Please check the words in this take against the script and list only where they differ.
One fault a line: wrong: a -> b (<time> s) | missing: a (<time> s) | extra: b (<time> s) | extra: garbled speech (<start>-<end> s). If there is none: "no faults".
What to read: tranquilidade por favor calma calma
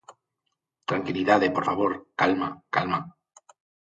no faults